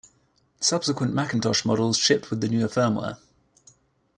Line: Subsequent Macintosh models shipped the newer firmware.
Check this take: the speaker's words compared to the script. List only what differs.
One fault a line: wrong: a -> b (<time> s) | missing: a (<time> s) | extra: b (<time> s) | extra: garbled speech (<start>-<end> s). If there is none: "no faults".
extra: with (2.3 s)